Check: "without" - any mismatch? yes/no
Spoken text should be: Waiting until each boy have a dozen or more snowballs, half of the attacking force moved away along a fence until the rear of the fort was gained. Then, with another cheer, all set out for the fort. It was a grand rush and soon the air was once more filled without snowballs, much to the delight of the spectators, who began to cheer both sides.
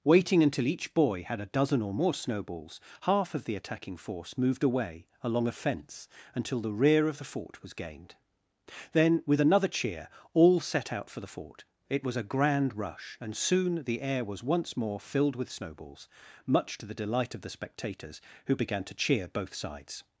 yes